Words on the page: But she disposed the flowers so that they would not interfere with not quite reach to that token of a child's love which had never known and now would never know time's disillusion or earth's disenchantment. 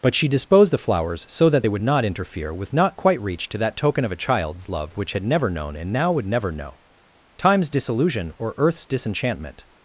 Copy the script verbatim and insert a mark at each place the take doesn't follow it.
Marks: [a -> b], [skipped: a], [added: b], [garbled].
But she disposed the flowers so that they would not interfere with not quite reach to that token of a child's love which had never known and now would never know time's disillusion or earth's disenchantment.